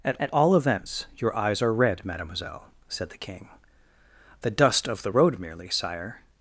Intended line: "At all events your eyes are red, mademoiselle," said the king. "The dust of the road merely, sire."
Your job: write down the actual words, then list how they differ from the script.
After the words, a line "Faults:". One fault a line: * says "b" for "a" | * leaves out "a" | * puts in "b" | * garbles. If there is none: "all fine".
"At at all events your eyes are red, mademoiselle," said the king. "The dust of the road merely, sire."
Faults:
* puts in "at"